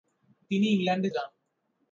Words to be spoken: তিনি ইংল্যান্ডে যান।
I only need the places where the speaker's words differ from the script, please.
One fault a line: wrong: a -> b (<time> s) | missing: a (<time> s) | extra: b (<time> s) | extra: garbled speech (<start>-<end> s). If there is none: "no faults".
no faults